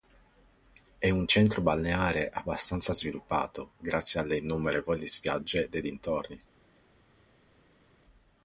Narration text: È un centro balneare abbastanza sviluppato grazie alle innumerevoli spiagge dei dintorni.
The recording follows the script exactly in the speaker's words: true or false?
true